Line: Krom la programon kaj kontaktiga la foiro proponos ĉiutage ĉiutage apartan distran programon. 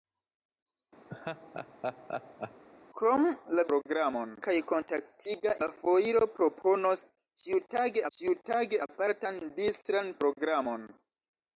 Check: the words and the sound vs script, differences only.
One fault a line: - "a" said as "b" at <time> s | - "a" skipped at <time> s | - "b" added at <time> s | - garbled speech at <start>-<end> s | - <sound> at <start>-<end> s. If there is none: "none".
- laugh at 1.1-2.6 s